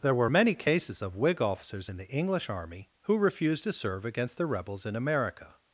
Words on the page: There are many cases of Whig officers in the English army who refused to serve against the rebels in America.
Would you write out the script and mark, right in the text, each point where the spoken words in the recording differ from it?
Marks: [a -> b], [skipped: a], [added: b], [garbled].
There [are -> were] many cases of Whig officers in the English army who refused to serve against the rebels in America.